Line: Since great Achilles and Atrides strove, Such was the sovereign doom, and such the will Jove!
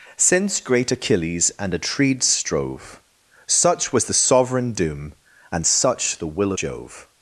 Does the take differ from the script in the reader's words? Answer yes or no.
no